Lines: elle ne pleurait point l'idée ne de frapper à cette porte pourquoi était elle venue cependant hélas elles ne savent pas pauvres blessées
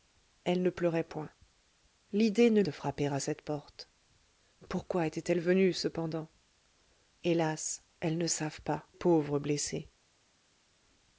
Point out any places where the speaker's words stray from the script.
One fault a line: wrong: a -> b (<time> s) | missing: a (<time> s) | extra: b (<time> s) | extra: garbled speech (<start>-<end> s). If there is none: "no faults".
no faults